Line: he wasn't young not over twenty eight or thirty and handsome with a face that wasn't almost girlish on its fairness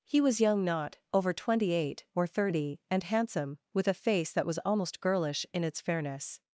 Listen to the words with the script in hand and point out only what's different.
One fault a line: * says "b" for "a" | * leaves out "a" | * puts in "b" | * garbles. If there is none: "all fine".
* says "was" for "wasn't"
* says "was" for "wasn't"
* says "in" for "on"